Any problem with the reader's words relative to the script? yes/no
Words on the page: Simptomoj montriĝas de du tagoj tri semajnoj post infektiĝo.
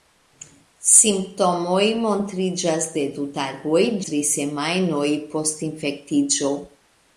no